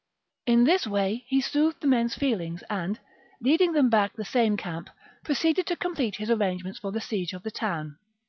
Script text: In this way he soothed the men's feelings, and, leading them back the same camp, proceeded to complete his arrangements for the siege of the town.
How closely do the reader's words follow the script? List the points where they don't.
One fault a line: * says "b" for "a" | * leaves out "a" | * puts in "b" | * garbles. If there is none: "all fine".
all fine